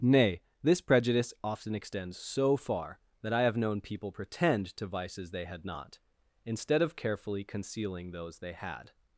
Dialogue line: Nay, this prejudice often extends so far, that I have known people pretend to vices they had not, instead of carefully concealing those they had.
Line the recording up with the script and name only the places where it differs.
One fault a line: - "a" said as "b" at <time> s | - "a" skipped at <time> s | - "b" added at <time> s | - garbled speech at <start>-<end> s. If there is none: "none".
none